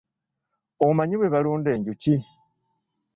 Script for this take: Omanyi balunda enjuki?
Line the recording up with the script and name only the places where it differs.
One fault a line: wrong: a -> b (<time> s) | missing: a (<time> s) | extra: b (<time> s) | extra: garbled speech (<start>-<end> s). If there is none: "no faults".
extra: bwe (1.2 s)